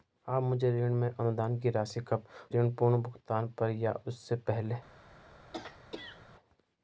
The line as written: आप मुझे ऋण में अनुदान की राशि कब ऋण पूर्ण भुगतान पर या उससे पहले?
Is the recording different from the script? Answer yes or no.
no